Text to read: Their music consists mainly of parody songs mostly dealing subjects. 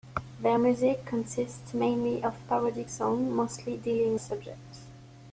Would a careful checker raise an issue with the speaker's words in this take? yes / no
no